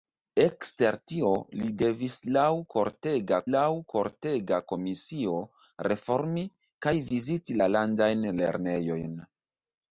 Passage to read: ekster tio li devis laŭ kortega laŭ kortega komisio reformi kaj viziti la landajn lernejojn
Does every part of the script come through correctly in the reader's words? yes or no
yes